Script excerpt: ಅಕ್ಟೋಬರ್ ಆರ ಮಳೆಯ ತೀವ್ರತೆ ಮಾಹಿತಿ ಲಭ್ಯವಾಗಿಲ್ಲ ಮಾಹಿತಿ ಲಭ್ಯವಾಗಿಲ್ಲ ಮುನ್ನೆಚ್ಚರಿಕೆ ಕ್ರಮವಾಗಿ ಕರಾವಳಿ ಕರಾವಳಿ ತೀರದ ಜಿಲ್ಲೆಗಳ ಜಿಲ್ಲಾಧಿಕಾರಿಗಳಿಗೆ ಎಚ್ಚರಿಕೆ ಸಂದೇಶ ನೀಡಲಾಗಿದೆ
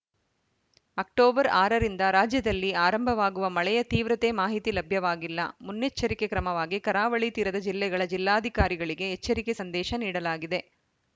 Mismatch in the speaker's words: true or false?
true